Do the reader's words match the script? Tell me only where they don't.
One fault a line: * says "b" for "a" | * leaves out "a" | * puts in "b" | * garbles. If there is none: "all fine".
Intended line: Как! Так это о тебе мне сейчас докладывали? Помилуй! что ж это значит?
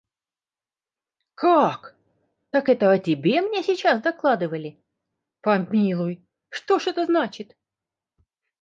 all fine